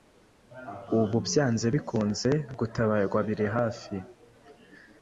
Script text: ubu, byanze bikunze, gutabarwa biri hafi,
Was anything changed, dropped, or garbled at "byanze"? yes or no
no